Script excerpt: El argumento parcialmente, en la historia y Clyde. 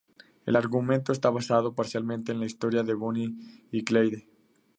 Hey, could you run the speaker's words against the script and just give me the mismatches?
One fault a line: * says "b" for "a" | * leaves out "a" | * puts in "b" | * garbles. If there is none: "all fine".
* puts in "está basado"
* puts in "de Bonnie"